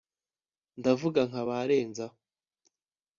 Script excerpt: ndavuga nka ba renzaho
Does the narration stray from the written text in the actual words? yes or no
no